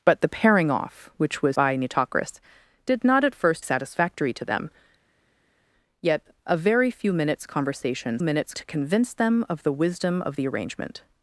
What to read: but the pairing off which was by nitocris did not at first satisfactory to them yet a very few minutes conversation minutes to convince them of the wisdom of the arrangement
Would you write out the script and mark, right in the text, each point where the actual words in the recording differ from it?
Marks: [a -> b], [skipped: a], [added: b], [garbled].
but the pairing off which was by nitocris did not at first satisfactory to them yet a very few minutes conversation minutes to convince them of the wisdom of the arrangement